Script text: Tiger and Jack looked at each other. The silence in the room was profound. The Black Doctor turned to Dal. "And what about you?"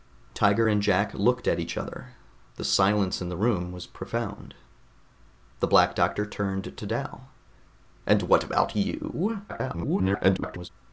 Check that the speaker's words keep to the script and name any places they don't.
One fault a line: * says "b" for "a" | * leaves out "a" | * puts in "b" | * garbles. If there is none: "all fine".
* garbles